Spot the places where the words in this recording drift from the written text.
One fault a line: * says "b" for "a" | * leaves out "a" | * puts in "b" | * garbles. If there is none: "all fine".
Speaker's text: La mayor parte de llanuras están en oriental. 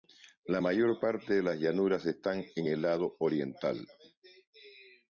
* puts in "las"
* puts in "el lado"